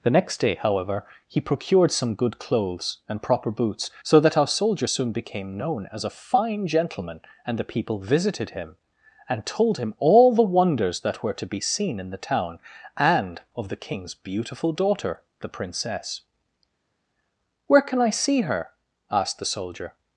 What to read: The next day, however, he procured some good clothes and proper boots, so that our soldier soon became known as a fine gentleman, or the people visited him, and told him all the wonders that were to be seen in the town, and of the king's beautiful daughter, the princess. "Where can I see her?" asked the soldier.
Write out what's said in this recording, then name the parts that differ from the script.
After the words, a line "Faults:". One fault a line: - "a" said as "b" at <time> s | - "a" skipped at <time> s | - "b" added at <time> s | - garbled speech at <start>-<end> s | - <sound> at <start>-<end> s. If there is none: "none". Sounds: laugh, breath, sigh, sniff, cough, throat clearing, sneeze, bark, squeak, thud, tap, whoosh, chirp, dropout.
The next day, however, he procured some good clothes and proper boots, so that our soldier soon became known as a fine gentleman, and the people visited him, and told him all the wonders that were to be seen in the town, and of the king's beautiful daughter, the princess. "Where can I see her?" asked the soldier.
Faults:
- "or" said as "and" at 7.4 s